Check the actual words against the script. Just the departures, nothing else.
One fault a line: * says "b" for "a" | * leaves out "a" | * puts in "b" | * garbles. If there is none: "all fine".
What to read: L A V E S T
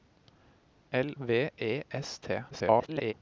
* leaves out "A"
* garbles